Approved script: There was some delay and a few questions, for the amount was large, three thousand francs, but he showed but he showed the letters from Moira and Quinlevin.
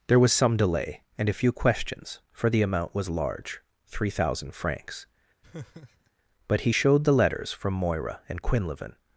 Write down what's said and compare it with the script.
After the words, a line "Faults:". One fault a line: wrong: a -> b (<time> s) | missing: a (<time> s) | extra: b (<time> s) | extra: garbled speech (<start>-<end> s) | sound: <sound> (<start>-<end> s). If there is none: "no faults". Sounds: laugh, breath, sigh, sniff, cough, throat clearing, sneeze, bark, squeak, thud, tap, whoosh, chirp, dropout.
There was some delay and a few questions, for the amount was large, three thousand francs, but he showed the letters from Moira and Quinlevin.
Faults:
sound: laugh (5.4-6.1 s)
missing: but he showed (7.0 s)